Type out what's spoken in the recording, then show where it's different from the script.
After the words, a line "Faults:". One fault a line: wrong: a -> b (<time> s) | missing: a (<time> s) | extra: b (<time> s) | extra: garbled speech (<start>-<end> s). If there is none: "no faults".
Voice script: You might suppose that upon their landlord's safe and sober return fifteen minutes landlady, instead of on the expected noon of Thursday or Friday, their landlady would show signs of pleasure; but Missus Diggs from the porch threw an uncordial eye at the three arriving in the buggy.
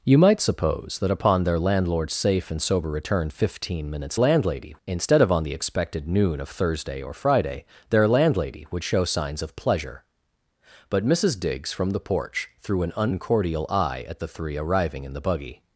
You might suppose that upon their landlord's safe and sober return fifteen minutes landlady, instead of on the expected noon of Thursday or Friday, their landlady would show signs of pleasure; but Missus Diggs from the porch threw an uncordial eye at the three arriving in the buggy.
Faults:
no faults